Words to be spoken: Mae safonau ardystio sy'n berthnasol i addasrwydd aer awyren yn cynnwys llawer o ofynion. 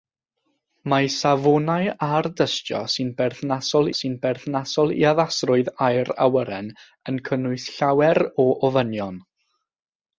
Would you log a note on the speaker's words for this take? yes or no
yes